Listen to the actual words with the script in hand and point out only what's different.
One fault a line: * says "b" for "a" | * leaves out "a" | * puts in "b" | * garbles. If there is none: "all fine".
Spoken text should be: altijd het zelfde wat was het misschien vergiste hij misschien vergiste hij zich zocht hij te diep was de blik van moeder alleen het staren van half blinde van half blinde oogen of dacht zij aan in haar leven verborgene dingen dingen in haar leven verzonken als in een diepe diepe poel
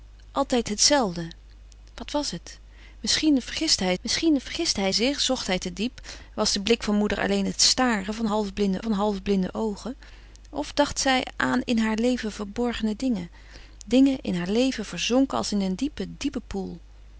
all fine